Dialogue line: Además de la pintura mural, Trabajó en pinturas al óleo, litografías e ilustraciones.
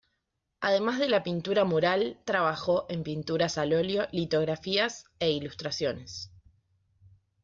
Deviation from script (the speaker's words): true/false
false